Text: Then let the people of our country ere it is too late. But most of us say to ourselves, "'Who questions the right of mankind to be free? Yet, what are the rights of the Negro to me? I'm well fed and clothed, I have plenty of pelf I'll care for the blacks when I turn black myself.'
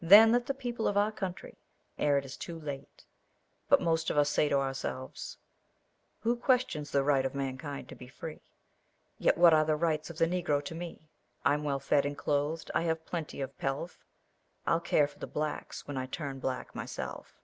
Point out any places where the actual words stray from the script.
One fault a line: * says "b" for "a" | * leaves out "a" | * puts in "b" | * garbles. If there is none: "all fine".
all fine